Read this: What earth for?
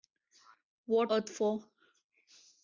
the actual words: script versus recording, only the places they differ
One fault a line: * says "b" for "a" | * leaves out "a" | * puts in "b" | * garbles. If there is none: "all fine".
all fine